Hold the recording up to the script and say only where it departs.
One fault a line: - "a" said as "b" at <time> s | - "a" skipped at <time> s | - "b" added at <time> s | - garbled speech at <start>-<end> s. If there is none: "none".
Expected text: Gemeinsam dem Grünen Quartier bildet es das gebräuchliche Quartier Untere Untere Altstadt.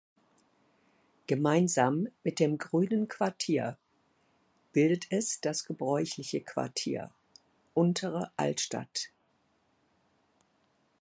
- "mit" added at 2.2 s
- "Untere" skipped at 8.3 s